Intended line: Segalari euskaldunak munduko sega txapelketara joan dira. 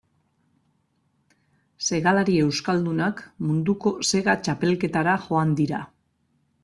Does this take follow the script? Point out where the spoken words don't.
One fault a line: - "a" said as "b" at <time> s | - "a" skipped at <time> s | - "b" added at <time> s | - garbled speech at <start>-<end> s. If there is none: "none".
none